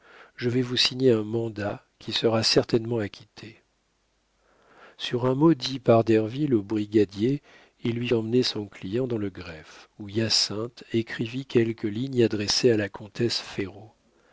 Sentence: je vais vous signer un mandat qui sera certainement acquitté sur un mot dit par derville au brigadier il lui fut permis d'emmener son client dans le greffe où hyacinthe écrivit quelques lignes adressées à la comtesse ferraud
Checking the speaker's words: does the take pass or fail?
fail